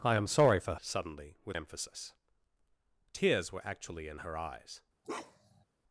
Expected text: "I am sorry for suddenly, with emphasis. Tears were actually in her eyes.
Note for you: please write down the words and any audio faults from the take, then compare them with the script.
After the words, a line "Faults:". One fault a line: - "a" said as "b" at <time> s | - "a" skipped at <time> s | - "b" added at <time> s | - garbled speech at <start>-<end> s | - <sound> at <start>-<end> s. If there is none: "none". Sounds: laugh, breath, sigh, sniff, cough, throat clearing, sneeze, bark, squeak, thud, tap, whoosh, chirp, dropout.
"I am sorry for suddenly, with emphasis. Tears were actually in her eyes.
Faults:
- bark at 5.0-5.6 s